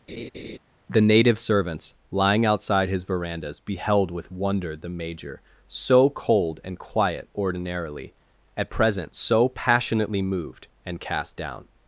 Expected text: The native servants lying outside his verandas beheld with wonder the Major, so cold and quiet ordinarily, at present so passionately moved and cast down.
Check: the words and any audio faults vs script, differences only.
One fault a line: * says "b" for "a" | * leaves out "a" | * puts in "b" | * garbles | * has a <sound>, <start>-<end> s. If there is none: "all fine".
* has a laugh, 0.1-0.6 s